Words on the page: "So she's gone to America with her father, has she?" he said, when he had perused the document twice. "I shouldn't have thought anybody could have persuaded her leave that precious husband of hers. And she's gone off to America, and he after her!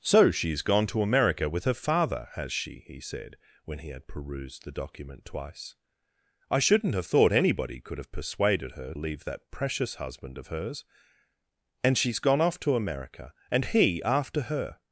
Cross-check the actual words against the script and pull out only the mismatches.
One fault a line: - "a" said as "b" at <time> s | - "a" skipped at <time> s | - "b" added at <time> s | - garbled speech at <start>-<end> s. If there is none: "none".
none